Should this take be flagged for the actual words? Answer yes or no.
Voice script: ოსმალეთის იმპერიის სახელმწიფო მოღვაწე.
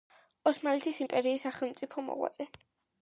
no